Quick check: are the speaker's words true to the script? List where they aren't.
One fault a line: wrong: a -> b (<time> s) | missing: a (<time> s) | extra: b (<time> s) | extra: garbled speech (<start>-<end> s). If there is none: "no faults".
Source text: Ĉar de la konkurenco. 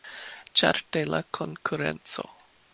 no faults